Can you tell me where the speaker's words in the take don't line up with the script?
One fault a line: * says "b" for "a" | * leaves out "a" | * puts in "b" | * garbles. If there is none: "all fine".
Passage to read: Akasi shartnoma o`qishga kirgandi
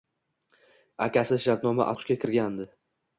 all fine